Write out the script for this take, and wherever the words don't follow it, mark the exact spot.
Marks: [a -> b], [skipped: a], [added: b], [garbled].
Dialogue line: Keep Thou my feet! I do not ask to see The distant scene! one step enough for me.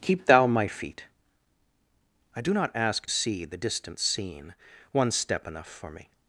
Keep Thou my feet! I do not ask [skipped: to] see The distant scene! one step enough for me.